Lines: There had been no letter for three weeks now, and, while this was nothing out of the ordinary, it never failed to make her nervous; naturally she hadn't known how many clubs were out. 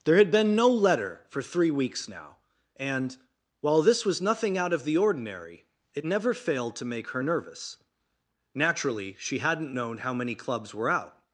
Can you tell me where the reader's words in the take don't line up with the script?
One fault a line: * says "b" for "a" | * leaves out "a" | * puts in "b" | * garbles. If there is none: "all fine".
all fine